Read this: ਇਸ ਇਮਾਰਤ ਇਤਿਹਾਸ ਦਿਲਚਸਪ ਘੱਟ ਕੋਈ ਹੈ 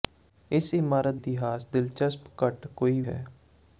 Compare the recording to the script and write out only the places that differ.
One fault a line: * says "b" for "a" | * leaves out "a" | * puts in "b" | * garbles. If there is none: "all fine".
all fine